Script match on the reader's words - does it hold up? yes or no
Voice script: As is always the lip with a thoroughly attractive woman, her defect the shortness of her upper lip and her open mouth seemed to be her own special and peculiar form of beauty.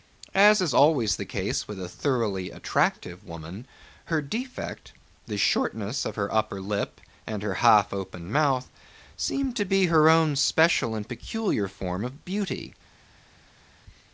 no